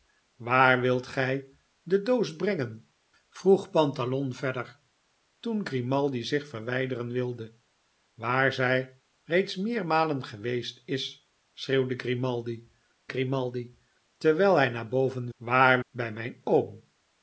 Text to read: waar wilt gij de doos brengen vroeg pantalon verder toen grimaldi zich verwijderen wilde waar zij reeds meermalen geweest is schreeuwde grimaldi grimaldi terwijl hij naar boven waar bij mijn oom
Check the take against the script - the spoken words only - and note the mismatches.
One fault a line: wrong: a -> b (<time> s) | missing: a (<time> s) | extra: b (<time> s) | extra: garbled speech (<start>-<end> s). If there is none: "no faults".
no faults